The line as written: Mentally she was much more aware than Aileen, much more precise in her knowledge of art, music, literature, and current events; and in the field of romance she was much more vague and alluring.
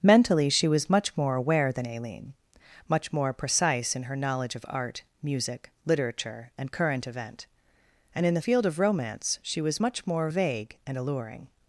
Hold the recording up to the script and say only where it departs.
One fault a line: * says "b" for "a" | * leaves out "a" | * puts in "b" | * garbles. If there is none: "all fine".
* says "event" for "events"